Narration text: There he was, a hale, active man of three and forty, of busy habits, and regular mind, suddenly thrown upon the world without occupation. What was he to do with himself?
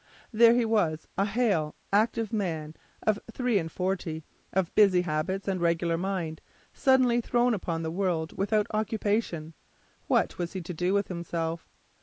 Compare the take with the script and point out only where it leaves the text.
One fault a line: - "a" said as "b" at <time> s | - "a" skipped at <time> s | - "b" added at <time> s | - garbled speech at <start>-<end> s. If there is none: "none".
none